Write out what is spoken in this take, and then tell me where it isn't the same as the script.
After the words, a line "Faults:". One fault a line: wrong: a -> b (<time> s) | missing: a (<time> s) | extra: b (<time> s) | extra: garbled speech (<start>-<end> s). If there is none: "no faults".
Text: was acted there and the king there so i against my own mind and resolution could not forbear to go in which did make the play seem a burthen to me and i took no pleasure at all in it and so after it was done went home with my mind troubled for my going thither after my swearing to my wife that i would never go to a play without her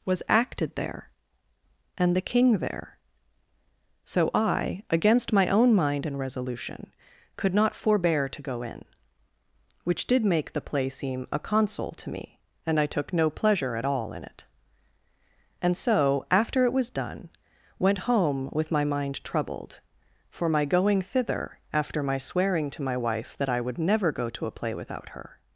was acted there and the king there so i against my own mind and resolution could not forbear to go in which did make the play seem a console to me and i took no pleasure at all in it and so after it was done went home with my mind troubled for my going thither after my swearing to my wife that i would never go to a play without her
Faults:
wrong: burthen -> console (11.4 s)